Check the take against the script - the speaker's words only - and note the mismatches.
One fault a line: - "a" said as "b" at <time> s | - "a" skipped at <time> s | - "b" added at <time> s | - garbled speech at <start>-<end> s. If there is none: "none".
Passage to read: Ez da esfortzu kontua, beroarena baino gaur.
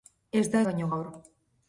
- "esfortzu kontua beroarena" skipped at 0.6 s